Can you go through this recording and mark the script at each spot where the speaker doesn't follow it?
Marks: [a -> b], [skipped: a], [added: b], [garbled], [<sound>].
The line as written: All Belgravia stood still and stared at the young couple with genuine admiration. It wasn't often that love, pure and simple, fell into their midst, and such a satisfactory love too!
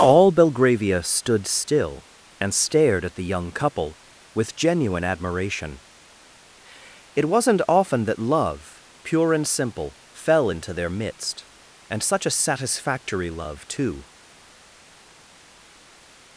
All Belgravia stood still and stared at the young couple with genuine admiration. It wasn't often that love, pure and simple, fell into their midst, and such a satisfactory love too!